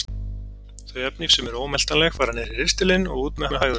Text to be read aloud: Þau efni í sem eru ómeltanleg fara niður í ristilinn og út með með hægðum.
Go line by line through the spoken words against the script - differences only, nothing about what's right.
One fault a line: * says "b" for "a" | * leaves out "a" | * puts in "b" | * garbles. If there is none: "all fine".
all fine